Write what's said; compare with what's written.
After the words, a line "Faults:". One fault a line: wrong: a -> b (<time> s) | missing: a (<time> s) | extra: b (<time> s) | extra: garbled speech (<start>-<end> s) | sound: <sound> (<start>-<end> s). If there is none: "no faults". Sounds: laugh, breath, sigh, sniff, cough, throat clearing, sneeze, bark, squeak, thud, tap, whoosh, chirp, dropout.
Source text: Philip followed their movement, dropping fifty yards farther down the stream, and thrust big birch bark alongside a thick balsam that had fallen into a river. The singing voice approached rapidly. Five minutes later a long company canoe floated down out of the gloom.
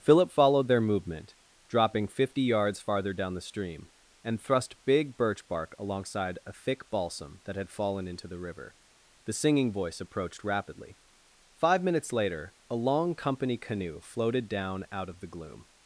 Philip followed their movement, dropping fifty yards farther down the stream, and thrust big birch bark alongside a thick balsam that had fallen into the river. The singing voice approached rapidly. Five minutes later a long company canoe floated down out of the gloom.
Faults:
wrong: a -> the (8.3 s)